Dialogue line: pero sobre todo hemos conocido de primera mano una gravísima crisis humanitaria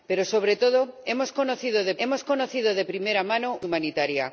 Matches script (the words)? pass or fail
fail